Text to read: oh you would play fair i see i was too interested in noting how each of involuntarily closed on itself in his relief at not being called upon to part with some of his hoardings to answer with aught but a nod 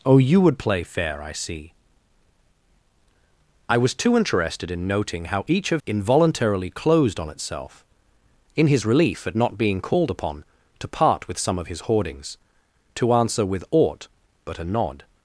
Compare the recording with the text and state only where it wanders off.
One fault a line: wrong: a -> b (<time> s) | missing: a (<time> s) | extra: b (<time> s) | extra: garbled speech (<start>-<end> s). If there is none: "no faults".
no faults